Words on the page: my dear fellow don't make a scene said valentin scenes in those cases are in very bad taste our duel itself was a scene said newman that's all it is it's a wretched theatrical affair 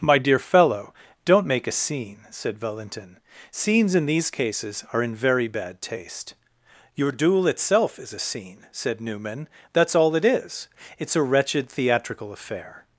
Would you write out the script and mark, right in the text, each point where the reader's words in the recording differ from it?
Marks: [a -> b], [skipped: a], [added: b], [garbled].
my dear fellow don't make a scene said valentin scenes in [those -> these] cases are in very bad taste [our -> your] duel itself [was -> is] a scene said newman that's all it is it's a wretched theatrical affair